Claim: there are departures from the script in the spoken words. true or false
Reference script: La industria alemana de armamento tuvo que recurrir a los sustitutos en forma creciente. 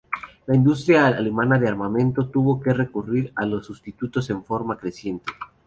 false